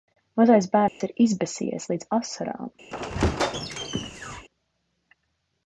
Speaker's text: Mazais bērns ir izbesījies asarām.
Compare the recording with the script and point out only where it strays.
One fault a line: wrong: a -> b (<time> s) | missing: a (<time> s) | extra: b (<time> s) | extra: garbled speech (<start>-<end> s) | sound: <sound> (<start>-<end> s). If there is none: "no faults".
sound: dropout (0.9-1.0 s)
extra: līdz (1.9 s)
sound: squeak (2.9-4.5 s)